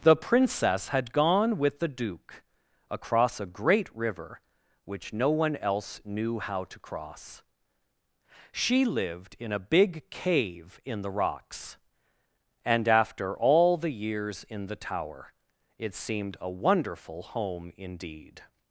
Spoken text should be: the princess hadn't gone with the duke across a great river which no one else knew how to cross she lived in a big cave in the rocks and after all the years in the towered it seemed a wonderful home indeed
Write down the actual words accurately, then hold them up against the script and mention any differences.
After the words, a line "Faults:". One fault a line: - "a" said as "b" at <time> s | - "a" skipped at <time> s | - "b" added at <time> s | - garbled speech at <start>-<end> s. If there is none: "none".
the princess had gone with the duke across a great river which no one else knew how to cross she lived in a big cave in the rocks and after all the years in the tower it seemed a wonderful home indeed
Faults:
- "hadn't" said as "had" at 0.9 s
- "towered" said as "tower" at 14.8 s